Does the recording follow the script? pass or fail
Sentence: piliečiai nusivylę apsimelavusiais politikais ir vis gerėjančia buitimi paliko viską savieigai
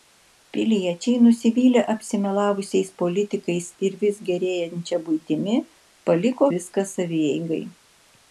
pass